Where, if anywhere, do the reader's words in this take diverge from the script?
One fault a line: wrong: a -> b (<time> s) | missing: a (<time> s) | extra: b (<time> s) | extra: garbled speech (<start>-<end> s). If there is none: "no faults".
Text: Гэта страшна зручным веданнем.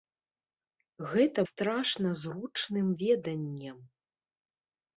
no faults